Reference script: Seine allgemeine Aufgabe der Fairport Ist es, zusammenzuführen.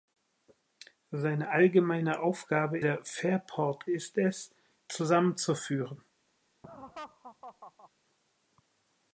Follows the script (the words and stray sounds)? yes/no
no